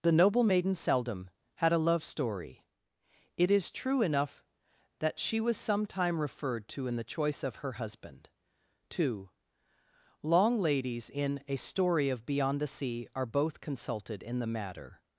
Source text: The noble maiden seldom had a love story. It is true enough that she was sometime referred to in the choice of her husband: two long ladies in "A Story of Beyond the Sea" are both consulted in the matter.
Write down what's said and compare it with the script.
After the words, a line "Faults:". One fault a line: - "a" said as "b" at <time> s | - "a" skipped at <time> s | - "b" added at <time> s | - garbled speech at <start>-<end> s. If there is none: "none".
The noble maiden seldom had a love story. It is true enough that she was sometime referred to in the choice of her husband: two long ladies in "A Story of Beyond the Sea" are both consulted in the matter.
Faults:
none